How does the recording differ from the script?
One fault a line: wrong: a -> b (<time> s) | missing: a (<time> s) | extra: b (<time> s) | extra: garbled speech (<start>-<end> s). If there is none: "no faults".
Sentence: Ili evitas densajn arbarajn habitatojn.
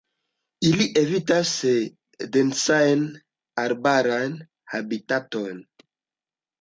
no faults